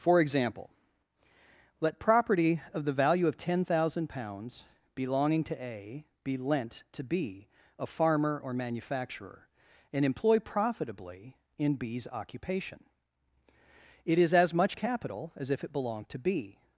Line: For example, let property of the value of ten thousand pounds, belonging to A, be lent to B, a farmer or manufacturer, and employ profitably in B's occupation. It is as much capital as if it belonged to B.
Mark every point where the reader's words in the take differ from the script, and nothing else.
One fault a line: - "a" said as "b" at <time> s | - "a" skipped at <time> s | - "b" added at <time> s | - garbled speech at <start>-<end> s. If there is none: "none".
none